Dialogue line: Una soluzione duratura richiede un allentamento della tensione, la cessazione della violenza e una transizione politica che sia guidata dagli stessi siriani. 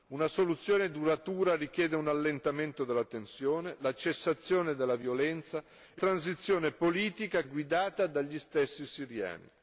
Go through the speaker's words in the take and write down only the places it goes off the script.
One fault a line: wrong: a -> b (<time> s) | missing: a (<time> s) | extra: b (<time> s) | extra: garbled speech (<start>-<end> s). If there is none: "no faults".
missing: una (6.0 s)
missing: che sia (7.4 s)